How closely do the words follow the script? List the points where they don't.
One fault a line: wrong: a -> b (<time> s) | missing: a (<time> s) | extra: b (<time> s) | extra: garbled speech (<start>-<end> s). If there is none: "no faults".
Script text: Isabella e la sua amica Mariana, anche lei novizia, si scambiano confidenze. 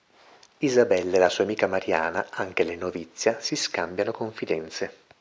no faults